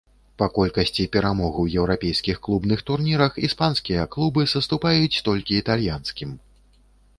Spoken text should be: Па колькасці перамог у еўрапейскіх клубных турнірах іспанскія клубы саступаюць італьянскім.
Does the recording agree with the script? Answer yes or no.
no